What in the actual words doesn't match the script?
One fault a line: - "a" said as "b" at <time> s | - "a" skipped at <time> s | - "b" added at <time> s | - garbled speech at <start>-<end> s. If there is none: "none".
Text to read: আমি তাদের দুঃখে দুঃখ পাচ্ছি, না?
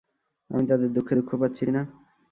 none